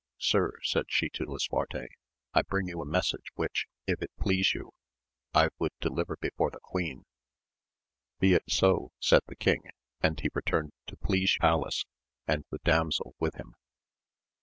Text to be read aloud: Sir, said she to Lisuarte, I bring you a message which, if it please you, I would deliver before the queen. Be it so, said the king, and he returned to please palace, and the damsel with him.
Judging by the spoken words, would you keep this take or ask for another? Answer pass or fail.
pass